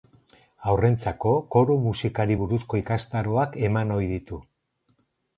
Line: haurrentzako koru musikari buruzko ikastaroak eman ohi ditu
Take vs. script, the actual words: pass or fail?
pass